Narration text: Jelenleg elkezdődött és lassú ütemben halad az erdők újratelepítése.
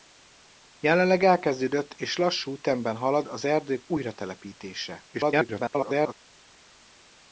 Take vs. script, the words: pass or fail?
fail